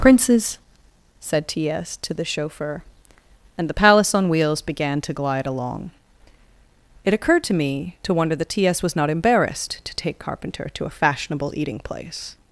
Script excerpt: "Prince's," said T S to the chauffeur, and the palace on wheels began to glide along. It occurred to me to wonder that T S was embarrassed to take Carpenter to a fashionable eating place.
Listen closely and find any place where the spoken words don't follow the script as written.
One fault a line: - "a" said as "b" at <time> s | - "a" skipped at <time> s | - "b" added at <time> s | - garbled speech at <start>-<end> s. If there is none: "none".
- "not" added at 9.0 s